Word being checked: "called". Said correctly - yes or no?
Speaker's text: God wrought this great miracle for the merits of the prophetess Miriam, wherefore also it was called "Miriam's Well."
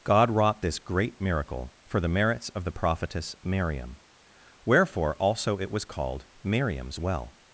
yes